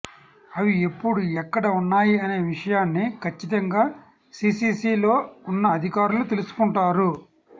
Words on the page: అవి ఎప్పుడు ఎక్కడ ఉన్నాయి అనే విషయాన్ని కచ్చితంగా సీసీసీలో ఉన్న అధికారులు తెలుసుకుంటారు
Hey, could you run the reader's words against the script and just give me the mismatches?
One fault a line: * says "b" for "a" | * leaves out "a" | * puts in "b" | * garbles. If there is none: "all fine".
all fine